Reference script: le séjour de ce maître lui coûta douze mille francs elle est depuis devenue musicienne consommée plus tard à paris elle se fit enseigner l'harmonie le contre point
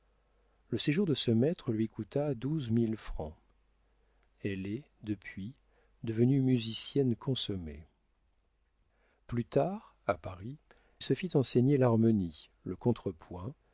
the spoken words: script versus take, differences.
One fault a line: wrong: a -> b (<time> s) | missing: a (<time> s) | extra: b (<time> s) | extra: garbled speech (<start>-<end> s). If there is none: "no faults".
missing: elle (10.6 s)